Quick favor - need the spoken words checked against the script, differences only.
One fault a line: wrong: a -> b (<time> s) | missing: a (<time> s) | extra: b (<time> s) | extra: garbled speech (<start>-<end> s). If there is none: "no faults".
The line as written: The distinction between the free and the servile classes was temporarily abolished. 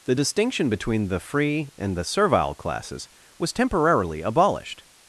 no faults